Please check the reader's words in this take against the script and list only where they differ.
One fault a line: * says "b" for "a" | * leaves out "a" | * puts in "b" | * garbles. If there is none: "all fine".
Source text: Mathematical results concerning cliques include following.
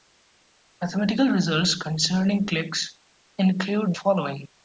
all fine